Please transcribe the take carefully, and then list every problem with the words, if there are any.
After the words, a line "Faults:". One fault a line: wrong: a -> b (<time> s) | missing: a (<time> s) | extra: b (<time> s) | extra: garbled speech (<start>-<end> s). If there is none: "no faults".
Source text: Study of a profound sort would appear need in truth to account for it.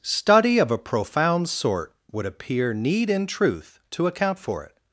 Study of a profound sort would appear need in truth to account for it.
Faults:
no faults